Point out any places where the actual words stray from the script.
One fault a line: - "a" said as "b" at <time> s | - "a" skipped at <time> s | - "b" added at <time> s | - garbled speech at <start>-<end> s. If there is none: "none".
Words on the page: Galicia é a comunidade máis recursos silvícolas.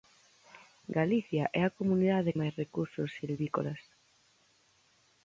none